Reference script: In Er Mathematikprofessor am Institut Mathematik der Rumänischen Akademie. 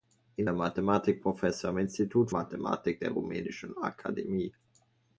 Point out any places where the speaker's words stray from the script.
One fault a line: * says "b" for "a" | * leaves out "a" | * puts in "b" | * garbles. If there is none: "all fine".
all fine